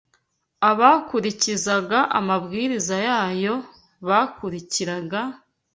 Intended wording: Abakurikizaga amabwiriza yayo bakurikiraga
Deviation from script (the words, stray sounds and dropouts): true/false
false